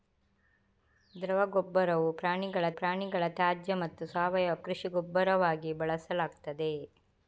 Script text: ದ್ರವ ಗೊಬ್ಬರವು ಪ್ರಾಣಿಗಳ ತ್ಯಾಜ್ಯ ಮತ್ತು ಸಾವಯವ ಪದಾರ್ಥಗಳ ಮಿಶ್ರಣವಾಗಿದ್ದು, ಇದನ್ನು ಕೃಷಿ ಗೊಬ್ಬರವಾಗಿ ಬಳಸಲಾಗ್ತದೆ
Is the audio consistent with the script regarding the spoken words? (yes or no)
no